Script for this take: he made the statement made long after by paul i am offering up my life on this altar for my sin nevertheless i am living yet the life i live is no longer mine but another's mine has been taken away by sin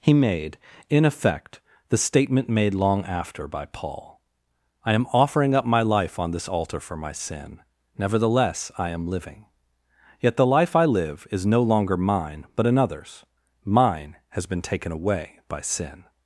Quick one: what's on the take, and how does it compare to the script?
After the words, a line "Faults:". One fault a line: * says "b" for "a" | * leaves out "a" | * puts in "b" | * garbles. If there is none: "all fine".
he made in effect the statement made long after by paul i am offering up my life on this altar for my sin nevertheless i am living yet the life i live is no longer mine but another's mine has been taken away by sin
Faults:
* puts in "in effect"